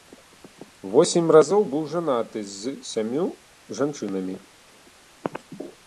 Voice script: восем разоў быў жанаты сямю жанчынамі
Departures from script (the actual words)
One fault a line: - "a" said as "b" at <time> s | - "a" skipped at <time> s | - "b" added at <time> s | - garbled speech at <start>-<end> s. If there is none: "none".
- "з" added at 2.5 s